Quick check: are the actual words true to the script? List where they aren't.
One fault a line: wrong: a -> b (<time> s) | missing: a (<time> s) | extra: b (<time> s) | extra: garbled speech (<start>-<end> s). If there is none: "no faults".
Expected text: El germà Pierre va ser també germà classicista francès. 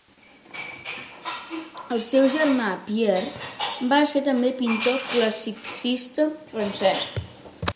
extra: seu (2.0 s)
wrong: germà -> pintor (4.6 s)